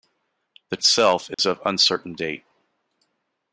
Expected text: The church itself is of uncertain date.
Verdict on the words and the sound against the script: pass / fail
fail